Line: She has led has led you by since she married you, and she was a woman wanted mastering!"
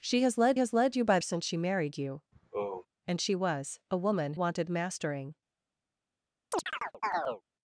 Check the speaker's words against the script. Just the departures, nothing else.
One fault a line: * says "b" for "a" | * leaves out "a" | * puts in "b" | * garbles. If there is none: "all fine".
all fine